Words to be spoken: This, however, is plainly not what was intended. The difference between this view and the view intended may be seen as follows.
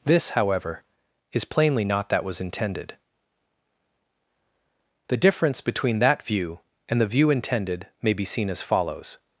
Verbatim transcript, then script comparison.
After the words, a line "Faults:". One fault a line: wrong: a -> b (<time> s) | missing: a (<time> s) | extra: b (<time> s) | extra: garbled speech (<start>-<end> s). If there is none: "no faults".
This, however, is plainly not that was intended. The difference between that view and the view intended may be seen as follows.
Faults:
wrong: what -> that (2.1 s)
wrong: this -> that (6.0 s)